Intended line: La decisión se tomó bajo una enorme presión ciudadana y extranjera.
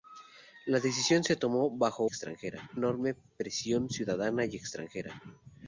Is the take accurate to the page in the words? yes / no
no